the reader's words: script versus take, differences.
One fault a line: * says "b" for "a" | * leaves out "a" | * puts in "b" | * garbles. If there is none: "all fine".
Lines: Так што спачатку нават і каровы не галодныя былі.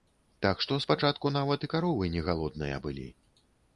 all fine